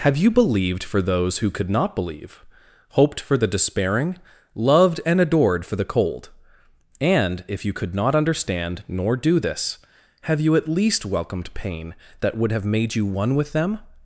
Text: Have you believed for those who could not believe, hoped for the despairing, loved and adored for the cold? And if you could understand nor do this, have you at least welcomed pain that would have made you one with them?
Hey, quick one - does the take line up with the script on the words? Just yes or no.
no